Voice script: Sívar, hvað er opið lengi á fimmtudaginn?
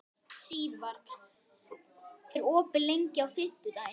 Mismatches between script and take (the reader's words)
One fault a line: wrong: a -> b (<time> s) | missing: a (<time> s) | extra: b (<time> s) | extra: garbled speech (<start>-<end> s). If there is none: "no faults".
missing: hvað (1.0 s)